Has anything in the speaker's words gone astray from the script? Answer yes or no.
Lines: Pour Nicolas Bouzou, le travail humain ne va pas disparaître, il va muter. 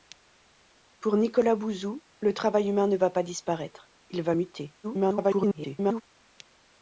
yes